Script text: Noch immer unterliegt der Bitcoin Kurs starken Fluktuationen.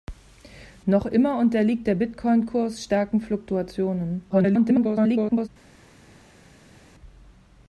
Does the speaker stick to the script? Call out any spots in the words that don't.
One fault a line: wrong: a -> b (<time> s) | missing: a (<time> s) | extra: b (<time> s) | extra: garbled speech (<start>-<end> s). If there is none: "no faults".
extra: garbled speech (4.3-5.5 s)